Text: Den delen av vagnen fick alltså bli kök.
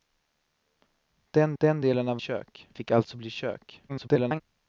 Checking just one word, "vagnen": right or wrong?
wrong